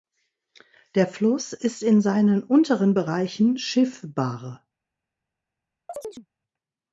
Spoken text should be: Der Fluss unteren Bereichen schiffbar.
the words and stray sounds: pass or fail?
fail